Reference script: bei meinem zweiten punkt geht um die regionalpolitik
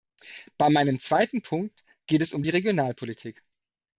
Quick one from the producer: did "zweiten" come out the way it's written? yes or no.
yes